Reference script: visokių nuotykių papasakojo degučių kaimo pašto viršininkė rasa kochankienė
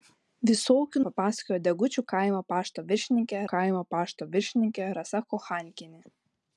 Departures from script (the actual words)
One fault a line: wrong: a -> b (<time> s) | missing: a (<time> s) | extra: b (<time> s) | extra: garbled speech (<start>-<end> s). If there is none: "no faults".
missing: nuotykių (1.0 s)
extra: kaimo pašto viršininkė (3.5 s)